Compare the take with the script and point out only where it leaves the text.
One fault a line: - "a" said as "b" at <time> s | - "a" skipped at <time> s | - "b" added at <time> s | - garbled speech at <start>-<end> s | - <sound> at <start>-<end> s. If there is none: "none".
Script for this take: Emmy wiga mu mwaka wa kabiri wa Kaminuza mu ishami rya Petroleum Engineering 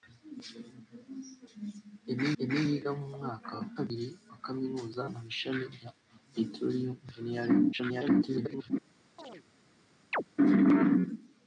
- "emmy" added at 2.4 s
- garbled speech at 7.7-8.7 s
- chirp at 9.2-9.4 s
- chirp at 10.1-10.2 s